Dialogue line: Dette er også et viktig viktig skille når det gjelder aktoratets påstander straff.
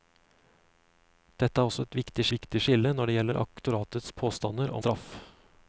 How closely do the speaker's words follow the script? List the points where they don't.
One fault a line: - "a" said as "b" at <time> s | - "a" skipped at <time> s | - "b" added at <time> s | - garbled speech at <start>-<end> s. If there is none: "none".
none